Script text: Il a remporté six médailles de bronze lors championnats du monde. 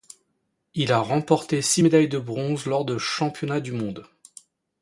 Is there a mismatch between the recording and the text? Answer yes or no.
yes